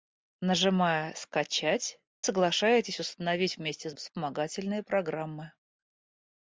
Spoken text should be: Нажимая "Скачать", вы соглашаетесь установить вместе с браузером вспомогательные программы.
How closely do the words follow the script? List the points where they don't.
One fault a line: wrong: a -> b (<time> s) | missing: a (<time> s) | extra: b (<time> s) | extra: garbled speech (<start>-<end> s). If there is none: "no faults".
missing: вы (2.0 s)
missing: браузером (3.9 s)